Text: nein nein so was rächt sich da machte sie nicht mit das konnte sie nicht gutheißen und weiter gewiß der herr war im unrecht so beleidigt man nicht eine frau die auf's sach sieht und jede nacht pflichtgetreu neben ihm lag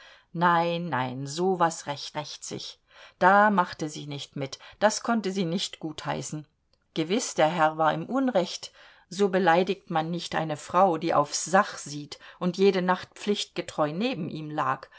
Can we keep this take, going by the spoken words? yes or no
no